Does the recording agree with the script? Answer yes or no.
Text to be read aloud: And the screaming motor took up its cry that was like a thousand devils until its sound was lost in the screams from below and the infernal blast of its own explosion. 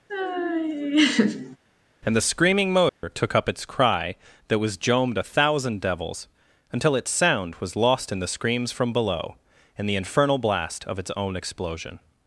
no